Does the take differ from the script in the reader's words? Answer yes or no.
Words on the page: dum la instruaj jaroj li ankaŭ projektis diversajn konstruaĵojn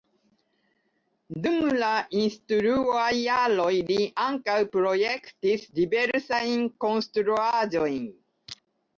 no